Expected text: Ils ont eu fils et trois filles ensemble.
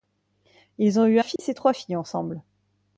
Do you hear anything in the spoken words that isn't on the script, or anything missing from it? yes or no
no